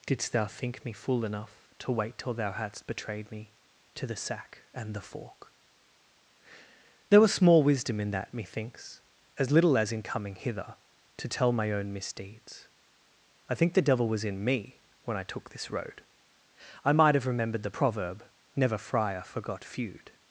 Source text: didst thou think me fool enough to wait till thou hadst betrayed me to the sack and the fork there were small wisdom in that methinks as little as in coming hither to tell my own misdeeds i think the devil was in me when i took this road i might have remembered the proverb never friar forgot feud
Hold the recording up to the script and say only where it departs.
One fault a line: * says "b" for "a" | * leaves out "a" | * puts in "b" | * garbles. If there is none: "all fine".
* says "was" for "were"